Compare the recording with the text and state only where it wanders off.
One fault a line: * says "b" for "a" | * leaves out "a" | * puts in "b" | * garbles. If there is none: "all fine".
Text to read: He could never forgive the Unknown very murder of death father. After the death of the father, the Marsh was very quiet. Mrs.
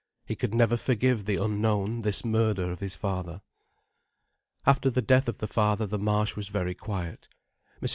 * says "this" for "very"
* says "his" for "death"